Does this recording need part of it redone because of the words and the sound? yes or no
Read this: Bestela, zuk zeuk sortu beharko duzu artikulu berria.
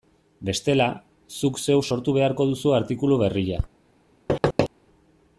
yes